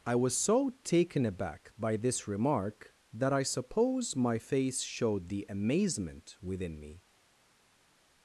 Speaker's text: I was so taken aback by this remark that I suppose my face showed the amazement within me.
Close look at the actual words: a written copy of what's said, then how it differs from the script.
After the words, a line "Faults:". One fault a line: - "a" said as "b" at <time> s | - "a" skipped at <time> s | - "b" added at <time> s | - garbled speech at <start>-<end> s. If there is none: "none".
I was so taken aback by this remark that I suppose my face showed the amazement within me.
Faults:
none